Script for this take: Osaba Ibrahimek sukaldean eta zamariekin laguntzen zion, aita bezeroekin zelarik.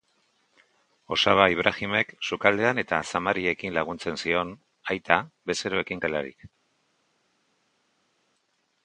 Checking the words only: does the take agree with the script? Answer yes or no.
yes